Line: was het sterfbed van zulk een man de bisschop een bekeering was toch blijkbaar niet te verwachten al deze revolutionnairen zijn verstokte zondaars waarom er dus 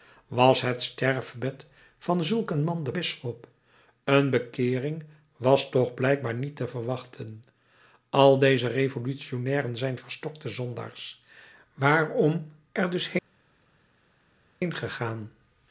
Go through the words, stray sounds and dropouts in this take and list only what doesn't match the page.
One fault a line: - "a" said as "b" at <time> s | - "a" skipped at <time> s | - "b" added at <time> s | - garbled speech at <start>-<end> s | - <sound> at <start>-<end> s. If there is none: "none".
none